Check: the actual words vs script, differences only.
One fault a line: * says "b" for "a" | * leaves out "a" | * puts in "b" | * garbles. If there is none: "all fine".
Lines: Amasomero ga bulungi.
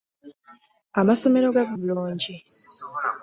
all fine